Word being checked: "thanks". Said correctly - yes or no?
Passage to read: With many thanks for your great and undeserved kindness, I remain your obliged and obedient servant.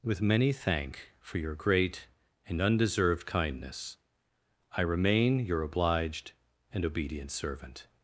no